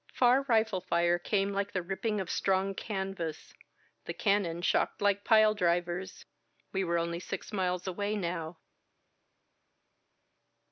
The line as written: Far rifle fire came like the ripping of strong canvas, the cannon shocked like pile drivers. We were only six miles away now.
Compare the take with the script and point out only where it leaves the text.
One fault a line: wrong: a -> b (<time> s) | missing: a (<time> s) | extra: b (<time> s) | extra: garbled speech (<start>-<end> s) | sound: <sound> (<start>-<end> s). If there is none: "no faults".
no faults